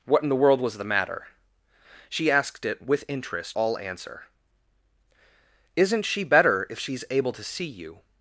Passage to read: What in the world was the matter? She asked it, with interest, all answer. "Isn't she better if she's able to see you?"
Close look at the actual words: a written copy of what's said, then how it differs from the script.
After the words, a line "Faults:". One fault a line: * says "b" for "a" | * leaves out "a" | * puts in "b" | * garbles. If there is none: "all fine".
What in the world was the matter? She asked it, with interest, all answer. "Isn't she better if she's able to see you?"
Faults:
all fine